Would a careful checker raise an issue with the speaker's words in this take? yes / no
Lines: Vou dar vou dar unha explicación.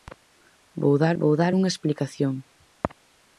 no